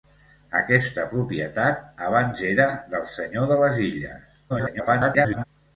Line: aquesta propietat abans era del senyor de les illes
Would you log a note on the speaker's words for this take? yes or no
yes